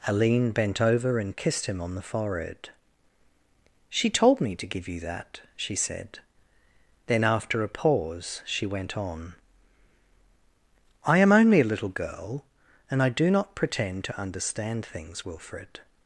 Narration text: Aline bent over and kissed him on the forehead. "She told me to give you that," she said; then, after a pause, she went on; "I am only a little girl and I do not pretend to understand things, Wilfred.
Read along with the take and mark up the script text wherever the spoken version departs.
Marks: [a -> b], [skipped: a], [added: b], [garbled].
Aline bent over and kissed him on the forehead. "She told me to give you that," she said; then, after a pause, she went on; "I am only a little girl and I do not pretend to understand things, Wilfred.